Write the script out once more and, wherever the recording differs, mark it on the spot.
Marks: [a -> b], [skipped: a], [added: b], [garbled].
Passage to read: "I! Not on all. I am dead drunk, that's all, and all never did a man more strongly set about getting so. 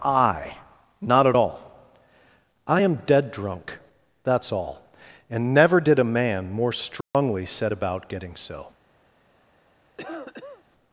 "I! Not [on -> at] all. I am dead drunk, that's all, and [skipped: all] never did a man more strongly set about getting so.